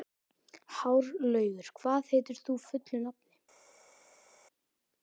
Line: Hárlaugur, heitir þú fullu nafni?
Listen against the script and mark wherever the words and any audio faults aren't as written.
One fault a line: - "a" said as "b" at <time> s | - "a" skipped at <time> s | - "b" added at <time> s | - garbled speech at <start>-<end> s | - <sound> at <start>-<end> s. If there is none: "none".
- "hvað" added at 1.8 s